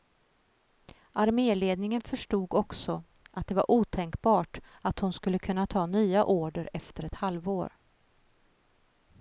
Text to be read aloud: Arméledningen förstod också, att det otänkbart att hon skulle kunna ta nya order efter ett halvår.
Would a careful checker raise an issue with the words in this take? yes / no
yes